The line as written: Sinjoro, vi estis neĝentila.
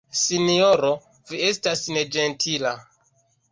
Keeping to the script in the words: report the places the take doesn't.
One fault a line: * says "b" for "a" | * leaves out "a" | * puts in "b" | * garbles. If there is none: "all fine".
* says "estas" for "estis"